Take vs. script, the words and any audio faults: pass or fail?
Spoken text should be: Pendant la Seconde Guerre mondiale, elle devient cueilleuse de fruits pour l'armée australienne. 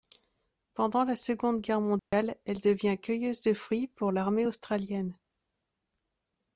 fail